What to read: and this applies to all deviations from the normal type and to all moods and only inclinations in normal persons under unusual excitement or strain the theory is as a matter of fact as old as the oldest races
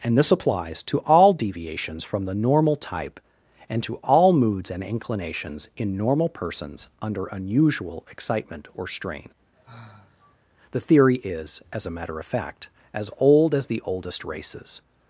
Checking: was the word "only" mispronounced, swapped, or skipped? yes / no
yes